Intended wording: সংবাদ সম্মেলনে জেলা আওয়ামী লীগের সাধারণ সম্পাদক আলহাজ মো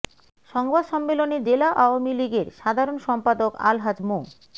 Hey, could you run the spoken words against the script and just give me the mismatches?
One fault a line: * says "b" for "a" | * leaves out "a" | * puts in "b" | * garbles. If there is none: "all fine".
all fine